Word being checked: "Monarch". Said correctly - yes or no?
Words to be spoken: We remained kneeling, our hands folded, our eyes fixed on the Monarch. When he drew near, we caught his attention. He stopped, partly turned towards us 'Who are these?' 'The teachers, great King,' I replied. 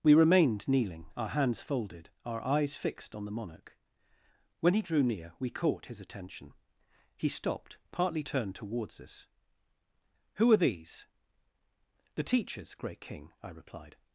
yes